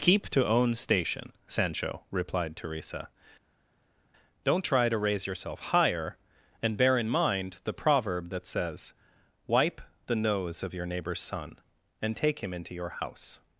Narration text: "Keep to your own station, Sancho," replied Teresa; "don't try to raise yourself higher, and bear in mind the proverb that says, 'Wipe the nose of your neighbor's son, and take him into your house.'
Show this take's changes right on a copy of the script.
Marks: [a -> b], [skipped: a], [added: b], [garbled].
"Keep to [skipped: your] own station, Sancho," replied Teresa; "don't try to raise yourself higher, and bear in mind the proverb that says, 'Wipe the nose of your neighbor's son, and take him into your house.'